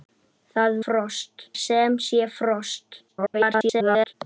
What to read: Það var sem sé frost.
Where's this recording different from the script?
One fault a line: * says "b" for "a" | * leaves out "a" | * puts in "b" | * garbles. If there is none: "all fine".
* says "frost" for "var"
* garbles